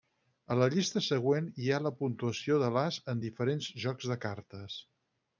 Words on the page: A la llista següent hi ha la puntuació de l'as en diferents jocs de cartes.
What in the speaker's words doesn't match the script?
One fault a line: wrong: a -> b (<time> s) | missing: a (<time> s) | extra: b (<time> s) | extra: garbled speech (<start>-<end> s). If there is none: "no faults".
no faults